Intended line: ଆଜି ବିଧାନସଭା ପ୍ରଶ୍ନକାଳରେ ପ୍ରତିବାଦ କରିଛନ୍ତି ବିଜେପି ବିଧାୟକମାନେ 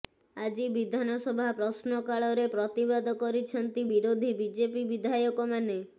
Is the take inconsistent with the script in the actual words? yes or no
yes